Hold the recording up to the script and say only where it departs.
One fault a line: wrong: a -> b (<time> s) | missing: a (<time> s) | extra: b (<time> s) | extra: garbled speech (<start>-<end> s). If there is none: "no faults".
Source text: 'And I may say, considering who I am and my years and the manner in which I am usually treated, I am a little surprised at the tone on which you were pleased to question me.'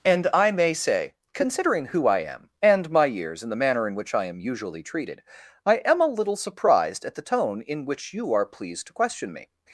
wrong: on -> in (7.6 s)
wrong: were -> are (8.3 s)